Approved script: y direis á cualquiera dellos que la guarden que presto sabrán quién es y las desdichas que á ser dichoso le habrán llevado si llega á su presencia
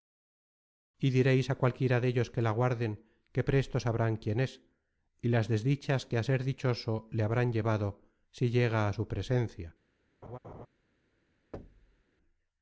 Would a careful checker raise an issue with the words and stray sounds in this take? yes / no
yes